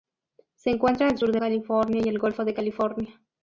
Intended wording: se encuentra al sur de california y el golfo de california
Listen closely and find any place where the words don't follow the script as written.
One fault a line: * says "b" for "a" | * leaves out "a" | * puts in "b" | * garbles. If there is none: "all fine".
all fine